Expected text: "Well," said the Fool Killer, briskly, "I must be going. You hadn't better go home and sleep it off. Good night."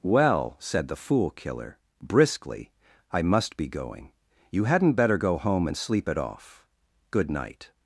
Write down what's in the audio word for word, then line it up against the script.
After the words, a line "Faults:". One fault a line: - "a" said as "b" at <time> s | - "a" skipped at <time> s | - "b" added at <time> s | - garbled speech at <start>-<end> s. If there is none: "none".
"Well," said the Fool Killer, briskly, "I must be going. You hadn't better go home and sleep it off. Good night."
Faults:
none